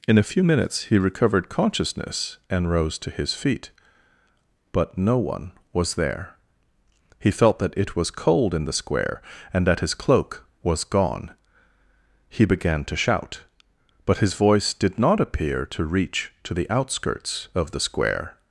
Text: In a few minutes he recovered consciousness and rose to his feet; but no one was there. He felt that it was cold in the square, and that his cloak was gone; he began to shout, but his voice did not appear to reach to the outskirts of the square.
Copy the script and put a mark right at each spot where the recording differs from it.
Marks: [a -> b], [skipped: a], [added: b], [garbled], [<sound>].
In a few minutes he recovered consciousness and rose to his feet; but no one was there. He felt that it was cold in the square, and that his cloak was gone; he began to shout, but his voice did not appear to reach to the outskirts of the square.